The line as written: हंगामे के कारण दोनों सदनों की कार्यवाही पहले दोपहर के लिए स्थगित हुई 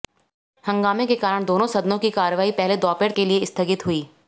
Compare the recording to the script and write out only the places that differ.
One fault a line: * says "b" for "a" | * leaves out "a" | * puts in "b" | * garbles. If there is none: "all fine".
all fine